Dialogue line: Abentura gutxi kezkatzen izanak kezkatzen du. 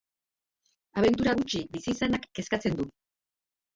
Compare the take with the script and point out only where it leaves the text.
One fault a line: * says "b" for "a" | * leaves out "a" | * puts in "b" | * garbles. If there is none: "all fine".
* says "bizi" for "kezkatzen"